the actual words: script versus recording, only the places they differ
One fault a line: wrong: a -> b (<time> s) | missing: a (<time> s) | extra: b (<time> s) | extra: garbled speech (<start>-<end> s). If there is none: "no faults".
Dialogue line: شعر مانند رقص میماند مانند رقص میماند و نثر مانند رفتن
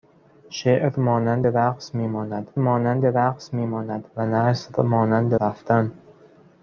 no faults